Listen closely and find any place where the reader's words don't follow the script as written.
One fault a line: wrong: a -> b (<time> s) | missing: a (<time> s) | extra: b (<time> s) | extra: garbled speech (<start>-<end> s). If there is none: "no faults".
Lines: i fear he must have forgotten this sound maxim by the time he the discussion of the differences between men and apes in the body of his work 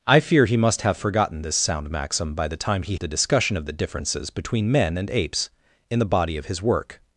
no faults